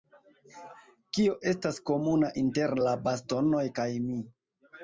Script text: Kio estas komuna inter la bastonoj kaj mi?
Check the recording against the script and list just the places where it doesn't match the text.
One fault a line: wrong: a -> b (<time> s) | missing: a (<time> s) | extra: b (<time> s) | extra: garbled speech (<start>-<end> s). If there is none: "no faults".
no faults